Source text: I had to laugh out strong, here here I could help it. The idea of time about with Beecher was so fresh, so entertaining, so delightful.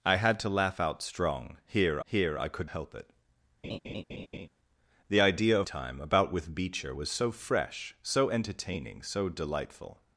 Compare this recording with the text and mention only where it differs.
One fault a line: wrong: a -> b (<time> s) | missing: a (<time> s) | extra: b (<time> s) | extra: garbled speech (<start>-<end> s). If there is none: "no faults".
no faults